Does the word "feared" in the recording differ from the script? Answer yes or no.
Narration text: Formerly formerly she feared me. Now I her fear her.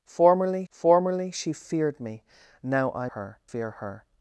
no